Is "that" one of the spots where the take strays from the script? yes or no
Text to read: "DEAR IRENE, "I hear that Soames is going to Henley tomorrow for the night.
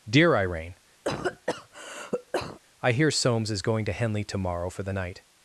yes